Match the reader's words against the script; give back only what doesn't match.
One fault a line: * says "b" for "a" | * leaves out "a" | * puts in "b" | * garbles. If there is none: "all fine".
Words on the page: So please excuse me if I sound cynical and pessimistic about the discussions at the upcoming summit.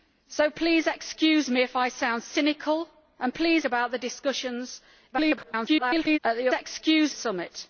* says "please" for "pessimistic"
* garbles
* says "excuse" for "upcoming"